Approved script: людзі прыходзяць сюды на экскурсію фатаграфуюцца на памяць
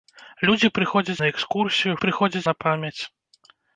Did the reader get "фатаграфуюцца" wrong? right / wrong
wrong